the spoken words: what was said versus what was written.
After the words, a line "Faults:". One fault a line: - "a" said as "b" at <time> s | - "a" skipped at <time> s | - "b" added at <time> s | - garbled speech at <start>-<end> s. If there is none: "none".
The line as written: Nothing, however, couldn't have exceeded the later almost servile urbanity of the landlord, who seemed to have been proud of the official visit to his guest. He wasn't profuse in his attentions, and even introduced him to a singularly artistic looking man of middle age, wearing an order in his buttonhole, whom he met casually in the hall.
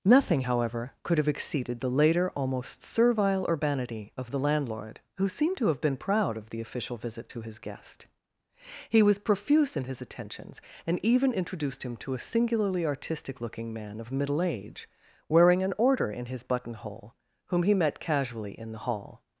Nothing, however, could have exceeded the later almost servile urbanity of the landlord, who seemed to have been proud of the official visit to his guest. He was profuse in his attentions, and even introduced him to a singularly artistic looking man of middle age, wearing an order in his buttonhole, whom he met casually in the hall.
Faults:
- "couldn't" said as "could" at 1.0 s
- "wasn't" said as "was" at 9.0 s